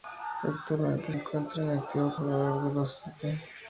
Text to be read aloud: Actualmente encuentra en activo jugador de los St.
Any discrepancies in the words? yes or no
no